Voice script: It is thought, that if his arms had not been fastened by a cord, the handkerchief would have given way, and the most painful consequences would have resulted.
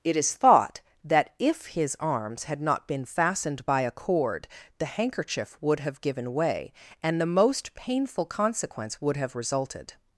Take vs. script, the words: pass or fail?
fail